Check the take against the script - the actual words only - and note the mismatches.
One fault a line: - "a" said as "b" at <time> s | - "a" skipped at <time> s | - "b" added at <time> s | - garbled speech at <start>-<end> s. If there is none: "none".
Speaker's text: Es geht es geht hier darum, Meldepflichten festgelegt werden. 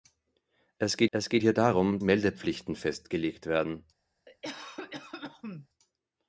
none